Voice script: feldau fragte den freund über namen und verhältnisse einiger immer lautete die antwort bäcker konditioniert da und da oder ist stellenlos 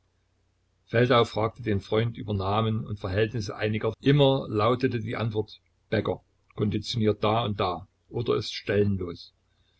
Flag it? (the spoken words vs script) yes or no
no